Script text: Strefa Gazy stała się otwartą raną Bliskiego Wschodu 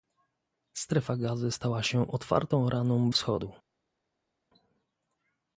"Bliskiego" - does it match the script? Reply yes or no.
no